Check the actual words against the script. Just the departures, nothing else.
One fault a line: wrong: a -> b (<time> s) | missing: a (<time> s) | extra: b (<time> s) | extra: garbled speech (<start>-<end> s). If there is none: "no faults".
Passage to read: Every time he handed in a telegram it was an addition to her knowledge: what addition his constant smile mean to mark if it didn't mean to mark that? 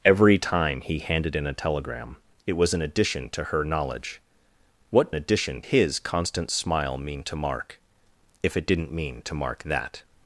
no faults